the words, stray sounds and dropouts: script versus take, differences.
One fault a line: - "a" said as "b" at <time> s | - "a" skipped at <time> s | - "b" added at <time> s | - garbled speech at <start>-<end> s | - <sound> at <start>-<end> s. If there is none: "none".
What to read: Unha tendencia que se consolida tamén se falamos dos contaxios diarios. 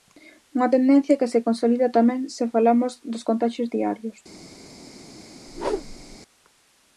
- whoosh at 5.5-6.2 s